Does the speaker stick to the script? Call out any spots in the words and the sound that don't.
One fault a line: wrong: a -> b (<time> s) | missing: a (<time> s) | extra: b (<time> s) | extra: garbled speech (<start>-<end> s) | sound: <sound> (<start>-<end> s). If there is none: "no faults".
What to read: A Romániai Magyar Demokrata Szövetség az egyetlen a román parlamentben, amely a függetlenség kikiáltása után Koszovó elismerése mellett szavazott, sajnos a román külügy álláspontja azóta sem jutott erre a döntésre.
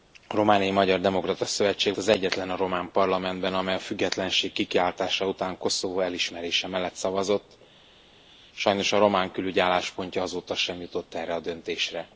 no faults